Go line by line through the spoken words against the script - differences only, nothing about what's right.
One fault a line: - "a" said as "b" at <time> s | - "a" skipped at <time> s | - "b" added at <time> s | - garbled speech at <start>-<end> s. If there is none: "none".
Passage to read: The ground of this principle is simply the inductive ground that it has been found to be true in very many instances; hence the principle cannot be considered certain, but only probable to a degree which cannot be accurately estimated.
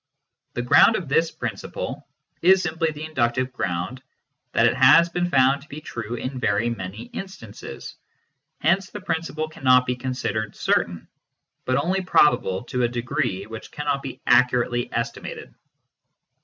none